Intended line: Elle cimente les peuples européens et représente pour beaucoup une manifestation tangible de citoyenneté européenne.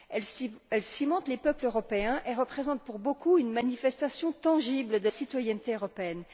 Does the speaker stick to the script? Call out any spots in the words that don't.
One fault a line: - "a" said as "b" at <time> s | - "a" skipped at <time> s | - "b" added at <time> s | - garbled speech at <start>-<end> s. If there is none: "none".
none